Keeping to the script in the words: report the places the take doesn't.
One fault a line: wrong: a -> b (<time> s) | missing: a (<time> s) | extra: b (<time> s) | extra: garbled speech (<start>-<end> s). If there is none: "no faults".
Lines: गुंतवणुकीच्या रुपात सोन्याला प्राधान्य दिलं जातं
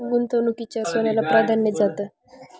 missing: रुपात (0.8 s)
missing: दिलं (1.7 s)